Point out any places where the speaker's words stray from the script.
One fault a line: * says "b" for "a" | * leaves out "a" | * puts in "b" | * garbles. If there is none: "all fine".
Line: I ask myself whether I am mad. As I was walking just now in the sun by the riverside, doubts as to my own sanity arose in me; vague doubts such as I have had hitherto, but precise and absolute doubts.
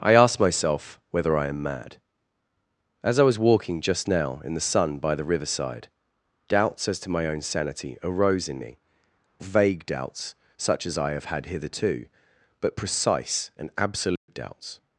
all fine